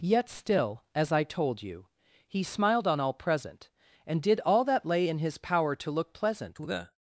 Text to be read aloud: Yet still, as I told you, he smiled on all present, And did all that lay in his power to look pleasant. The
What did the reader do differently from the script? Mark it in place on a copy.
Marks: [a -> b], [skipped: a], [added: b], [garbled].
Yet still, as I told you, he smiled on all present, And did all that lay in his power to look pleasant. The